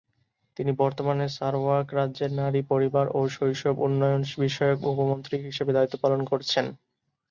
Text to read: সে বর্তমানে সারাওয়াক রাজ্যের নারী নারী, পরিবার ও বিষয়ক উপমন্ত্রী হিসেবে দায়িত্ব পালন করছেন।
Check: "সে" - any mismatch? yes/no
yes